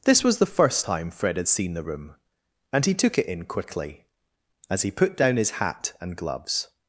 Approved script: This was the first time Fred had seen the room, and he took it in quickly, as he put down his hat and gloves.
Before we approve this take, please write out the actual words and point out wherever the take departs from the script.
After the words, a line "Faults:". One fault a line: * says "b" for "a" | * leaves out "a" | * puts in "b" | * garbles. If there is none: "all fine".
This was the first time Fred had seen the room, and he took it in quickly, as he put down his hat and gloves.
Faults:
all fine